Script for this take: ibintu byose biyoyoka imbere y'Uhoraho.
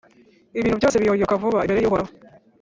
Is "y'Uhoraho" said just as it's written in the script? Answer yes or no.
yes